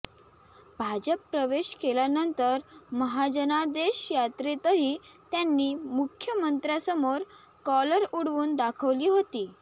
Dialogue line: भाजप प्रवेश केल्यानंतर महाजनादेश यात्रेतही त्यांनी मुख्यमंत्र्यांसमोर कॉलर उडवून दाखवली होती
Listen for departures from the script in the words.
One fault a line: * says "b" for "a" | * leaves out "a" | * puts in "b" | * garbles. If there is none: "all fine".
all fine